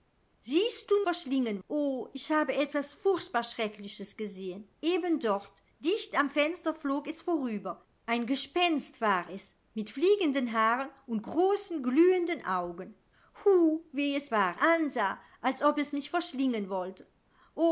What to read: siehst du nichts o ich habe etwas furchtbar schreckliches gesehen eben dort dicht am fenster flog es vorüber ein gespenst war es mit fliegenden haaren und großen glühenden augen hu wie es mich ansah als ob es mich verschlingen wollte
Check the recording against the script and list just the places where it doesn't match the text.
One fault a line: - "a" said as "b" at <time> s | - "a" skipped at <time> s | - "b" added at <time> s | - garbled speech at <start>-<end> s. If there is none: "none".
- "nichts" said as "verschlingen" at 1.0 s
- "mich" said as "war" at 14.3 s